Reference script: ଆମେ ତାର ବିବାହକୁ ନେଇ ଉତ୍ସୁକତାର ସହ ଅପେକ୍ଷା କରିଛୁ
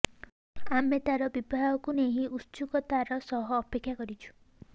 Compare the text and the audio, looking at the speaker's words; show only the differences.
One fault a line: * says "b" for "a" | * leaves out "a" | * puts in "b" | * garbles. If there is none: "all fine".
all fine